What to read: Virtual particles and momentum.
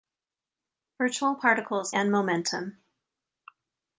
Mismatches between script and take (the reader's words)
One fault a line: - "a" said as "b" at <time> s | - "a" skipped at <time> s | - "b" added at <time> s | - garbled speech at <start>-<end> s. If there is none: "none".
none